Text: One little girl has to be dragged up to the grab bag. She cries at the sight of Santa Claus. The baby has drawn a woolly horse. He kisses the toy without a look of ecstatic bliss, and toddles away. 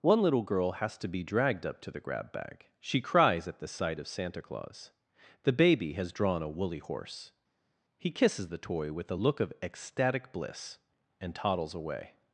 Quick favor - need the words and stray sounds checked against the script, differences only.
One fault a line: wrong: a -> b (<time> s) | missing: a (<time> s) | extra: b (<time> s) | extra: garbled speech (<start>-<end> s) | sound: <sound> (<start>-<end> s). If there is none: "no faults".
wrong: without -> with (8.9 s)